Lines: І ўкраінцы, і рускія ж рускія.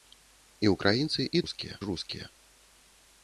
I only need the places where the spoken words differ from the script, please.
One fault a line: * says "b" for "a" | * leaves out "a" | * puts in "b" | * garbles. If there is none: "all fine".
all fine